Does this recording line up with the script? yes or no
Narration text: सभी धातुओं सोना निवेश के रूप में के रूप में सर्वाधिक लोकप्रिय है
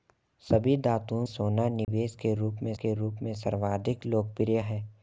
yes